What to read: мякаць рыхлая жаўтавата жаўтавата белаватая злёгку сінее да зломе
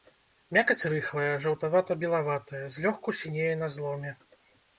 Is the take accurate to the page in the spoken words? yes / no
no